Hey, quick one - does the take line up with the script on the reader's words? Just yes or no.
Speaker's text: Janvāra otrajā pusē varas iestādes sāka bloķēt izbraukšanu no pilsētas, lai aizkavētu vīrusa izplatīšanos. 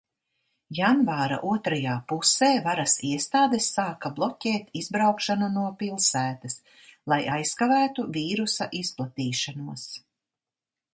yes